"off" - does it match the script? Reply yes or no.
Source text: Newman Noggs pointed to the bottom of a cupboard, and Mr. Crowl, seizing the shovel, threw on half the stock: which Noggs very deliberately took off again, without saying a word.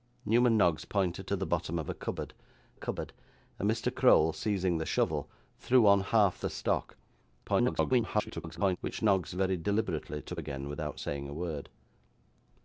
no